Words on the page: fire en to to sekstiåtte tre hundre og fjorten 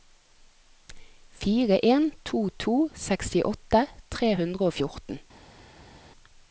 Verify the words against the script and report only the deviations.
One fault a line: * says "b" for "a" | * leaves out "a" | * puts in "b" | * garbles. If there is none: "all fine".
all fine